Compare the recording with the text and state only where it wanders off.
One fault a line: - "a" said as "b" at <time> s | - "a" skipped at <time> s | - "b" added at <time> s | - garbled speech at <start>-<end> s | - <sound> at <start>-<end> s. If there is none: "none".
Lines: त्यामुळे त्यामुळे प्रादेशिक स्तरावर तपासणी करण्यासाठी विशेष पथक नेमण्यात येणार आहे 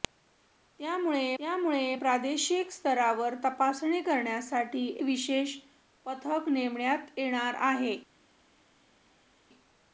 none